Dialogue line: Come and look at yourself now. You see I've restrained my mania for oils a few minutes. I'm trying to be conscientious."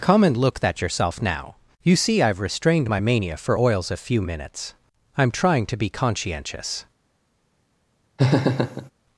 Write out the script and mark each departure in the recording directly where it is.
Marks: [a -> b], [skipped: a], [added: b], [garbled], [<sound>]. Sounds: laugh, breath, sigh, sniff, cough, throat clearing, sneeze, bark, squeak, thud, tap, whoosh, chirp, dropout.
Come and look [at -> that] yourself now. You see I've restrained my mania for oils a few minutes. I'm trying to be conscientious." [laugh]